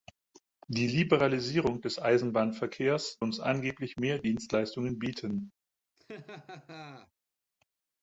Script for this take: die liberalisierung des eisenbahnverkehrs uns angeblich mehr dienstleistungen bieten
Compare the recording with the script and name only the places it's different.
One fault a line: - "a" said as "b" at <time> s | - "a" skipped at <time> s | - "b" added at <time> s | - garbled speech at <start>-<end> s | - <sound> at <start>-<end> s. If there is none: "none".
- laugh at 6.0-7.1 s